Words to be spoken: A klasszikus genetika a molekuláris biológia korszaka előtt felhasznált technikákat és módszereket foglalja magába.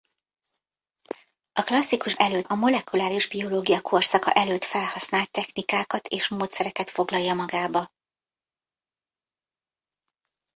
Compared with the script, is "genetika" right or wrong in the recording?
wrong